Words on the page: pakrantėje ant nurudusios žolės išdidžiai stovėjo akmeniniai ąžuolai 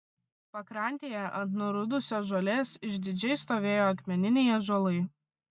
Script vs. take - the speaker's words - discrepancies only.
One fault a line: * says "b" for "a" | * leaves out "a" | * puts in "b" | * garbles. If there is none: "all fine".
all fine